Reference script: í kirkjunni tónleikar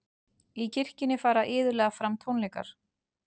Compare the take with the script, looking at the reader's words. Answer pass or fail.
fail